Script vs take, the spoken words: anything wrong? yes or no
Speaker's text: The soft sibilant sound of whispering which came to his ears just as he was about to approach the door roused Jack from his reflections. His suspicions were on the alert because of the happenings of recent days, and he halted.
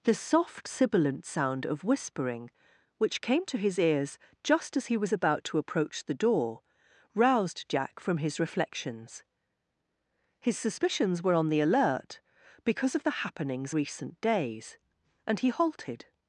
yes